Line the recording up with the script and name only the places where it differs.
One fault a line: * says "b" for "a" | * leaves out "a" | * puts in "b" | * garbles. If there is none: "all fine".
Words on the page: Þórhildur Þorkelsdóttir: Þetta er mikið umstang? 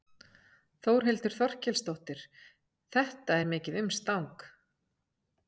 all fine